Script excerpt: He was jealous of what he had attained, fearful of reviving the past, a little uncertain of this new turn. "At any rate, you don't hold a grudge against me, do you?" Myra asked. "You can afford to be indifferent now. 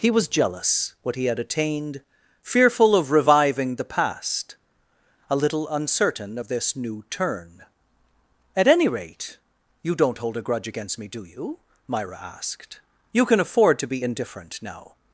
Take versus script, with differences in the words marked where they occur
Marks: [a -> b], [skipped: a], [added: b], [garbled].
He was jealous [skipped: of] what he had attained, fearful of reviving the past, a little uncertain of this new turn. "At any rate, you don't hold a grudge against me, do you?" Myra asked. "You can afford to be indifferent now.